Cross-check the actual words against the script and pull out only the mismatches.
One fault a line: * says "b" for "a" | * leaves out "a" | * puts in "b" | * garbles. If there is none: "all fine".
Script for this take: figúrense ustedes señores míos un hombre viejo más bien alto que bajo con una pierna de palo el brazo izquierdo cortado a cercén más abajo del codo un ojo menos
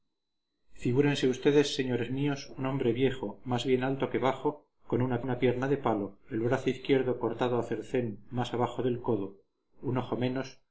* puts in "una"